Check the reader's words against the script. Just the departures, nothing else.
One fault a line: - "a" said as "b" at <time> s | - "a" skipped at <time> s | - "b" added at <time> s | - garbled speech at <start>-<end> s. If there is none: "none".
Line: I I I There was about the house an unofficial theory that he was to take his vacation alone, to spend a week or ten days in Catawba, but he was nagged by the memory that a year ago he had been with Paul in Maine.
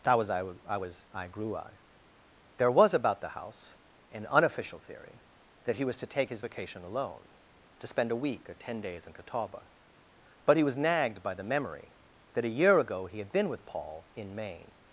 - "that was" added at 0.0 s
- "was I grew" added at 0.8 s